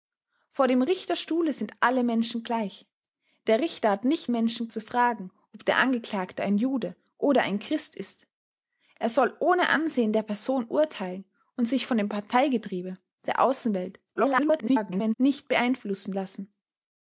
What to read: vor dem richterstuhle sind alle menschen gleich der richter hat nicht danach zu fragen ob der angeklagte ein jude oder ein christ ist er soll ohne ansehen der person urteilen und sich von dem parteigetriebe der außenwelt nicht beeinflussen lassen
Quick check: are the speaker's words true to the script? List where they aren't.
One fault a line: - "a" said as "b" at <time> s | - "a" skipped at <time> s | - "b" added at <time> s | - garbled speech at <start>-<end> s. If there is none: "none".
- "danach" said as "menschen" at 4.3 s
- garbled speech at 14.2-15.1 s